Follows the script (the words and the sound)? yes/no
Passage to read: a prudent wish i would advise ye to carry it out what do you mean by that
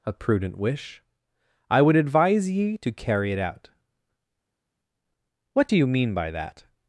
yes